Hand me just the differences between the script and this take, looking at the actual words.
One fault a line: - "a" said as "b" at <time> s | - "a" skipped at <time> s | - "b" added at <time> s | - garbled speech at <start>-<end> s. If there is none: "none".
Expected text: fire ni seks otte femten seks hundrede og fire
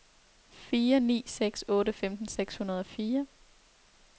none